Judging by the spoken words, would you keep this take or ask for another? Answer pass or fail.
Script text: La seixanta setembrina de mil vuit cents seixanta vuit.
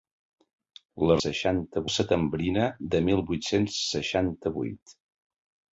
pass